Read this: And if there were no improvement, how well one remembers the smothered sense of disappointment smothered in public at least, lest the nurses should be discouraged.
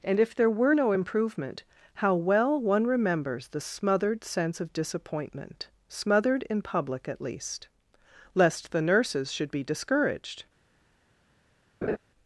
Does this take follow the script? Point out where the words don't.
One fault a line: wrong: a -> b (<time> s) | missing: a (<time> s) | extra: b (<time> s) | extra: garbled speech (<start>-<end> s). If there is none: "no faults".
no faults